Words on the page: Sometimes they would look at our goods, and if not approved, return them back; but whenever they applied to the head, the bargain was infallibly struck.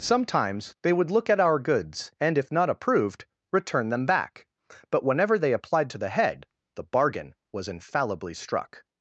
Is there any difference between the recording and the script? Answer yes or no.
no